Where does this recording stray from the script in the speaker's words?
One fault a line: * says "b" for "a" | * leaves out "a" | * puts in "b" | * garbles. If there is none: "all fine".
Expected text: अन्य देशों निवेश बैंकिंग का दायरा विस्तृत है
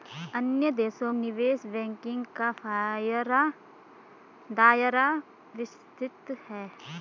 all fine